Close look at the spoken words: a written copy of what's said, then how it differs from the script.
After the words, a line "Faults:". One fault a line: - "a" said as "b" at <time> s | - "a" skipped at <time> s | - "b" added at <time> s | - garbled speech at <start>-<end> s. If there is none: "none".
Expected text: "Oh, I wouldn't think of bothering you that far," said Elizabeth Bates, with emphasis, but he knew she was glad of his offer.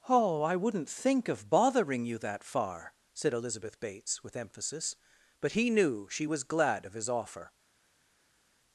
"Oh, I wouldn't think of bothering you that far," said Elizabeth Bates, with emphasis, but he knew she was glad of his offer.
Faults:
none